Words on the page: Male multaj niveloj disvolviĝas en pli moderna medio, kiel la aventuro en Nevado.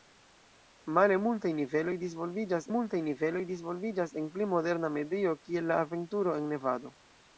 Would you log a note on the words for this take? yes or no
yes